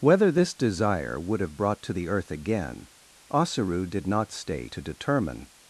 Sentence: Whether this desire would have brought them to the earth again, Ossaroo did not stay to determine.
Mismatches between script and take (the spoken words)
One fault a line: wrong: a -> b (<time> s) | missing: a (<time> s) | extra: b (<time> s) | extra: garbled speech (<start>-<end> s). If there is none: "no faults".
missing: them (1.8 s)